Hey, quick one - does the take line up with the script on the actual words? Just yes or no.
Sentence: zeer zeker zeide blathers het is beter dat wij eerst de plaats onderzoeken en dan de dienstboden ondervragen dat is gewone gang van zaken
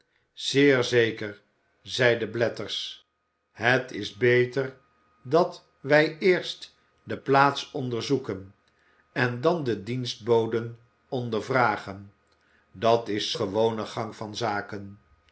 yes